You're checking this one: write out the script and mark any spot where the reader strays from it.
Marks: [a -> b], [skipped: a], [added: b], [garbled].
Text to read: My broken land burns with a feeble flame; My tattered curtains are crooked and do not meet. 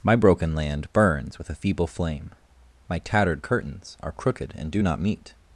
My broken land burns with a feeble flame; My tattered curtains are crooked and do not meet.